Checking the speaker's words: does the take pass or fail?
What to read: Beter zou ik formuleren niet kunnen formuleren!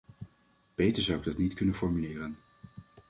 fail